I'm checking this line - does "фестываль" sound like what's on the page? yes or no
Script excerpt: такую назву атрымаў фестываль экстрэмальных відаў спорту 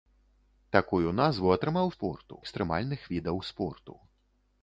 no